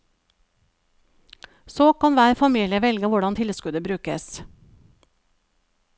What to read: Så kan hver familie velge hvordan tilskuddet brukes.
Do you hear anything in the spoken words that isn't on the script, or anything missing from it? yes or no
no